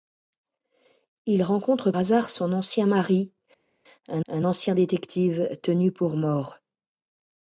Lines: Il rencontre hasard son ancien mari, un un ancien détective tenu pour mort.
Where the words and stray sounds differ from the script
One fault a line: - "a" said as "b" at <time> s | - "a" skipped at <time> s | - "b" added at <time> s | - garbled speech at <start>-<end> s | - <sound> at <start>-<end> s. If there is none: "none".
none